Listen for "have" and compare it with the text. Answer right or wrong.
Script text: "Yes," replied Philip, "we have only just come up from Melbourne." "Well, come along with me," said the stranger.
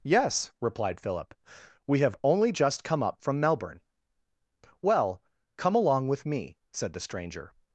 right